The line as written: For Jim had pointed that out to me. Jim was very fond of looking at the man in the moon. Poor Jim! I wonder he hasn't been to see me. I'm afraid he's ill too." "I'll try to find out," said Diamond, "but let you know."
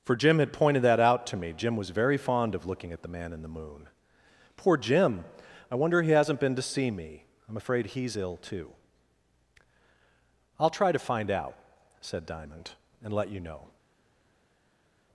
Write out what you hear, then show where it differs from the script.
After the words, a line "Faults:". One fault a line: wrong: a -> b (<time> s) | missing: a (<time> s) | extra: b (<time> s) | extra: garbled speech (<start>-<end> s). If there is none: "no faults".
For Jim had pointed that out to me. Jim was very fond of looking at the man in the moon. Poor Jim! I wonder he hasn't been to see me. I'm afraid he's ill too." "I'll try to find out," said Diamond, "and let you know."
Faults:
wrong: but -> and (13.0 s)